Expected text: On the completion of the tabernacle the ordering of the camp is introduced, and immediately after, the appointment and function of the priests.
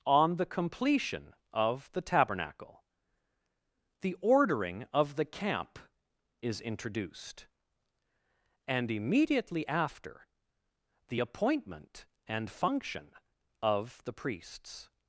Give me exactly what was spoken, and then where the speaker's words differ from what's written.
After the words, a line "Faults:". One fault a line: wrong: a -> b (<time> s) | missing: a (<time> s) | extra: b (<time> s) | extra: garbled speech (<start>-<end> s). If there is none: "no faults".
On the completion of the tabernacle the ordering of the camp is introduced, and immediately after, the appointment and function of the priests.
Faults:
no faults